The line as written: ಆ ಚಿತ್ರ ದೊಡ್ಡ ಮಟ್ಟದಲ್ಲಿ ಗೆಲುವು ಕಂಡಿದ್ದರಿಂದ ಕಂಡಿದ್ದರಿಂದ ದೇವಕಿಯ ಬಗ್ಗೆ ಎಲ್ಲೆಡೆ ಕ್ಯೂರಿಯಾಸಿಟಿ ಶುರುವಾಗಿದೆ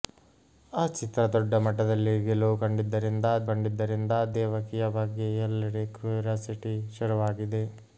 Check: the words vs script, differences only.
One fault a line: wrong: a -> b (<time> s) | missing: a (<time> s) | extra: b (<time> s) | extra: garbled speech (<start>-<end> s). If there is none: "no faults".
no faults